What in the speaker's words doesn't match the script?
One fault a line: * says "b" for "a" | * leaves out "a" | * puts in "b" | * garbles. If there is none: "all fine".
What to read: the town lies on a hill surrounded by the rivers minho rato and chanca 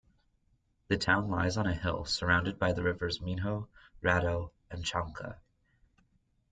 all fine